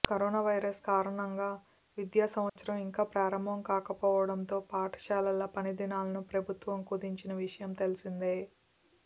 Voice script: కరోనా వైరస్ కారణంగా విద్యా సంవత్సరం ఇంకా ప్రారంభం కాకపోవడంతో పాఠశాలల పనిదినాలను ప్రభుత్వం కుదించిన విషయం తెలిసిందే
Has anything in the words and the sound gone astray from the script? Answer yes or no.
yes